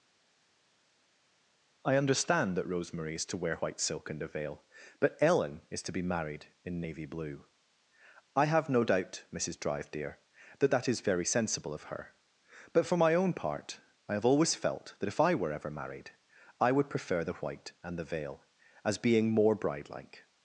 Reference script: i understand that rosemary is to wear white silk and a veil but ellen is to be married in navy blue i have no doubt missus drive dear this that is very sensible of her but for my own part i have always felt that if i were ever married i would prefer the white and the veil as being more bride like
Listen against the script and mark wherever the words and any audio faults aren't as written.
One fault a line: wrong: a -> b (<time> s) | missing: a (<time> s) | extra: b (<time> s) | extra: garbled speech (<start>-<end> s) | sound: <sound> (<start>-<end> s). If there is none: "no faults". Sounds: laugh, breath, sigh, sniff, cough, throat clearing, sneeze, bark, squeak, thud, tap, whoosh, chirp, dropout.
wrong: this -> that (10.6 s)